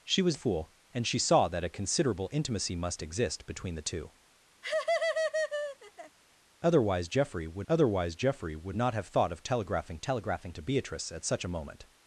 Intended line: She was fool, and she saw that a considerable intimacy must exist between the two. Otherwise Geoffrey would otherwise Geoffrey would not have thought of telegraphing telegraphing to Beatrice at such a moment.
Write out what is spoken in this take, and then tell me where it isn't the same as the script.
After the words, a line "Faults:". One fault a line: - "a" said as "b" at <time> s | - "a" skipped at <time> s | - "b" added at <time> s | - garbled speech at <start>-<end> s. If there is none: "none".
She was fool, and she saw that a considerable intimacy must exist between the two. Otherwise Geoffrey would otherwise Geoffrey would not have thought of telegraphing telegraphing to Beatrice at such a moment.
Faults:
none